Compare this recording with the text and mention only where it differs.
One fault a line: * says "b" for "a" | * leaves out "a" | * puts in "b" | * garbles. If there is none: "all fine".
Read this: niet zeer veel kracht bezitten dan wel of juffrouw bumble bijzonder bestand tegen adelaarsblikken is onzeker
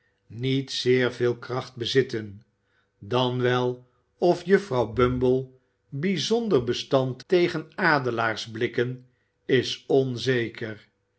all fine